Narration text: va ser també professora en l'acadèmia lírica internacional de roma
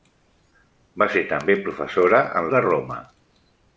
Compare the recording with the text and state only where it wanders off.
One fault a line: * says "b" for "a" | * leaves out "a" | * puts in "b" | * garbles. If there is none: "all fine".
* leaves out "l'acadèmia lírica internacional"